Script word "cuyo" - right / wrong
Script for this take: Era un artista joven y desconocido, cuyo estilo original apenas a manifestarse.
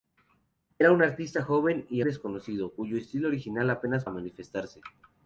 right